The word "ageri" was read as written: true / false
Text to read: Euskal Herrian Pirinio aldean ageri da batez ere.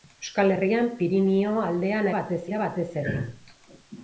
false